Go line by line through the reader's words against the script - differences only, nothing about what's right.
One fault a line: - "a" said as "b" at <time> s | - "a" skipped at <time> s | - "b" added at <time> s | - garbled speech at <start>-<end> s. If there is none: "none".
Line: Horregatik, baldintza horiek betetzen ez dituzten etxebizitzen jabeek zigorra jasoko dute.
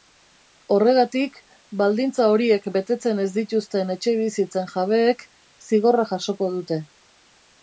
none